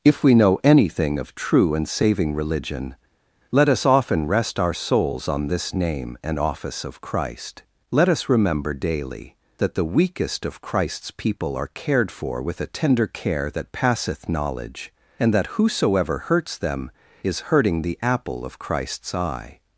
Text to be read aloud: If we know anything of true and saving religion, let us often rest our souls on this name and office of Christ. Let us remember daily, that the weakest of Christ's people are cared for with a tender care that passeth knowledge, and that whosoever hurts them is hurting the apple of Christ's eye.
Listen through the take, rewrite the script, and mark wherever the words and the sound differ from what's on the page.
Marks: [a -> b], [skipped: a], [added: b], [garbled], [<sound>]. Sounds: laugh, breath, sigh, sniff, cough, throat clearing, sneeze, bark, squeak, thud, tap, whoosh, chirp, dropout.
If we know anything of true and saving religion, let us often rest our souls on this name and office of Christ. Let us remember daily, that the weakest of Christ's people are cared for with a tender care that passeth knowledge, and that whosoever hurts them is hurting the apple of Christ's eye.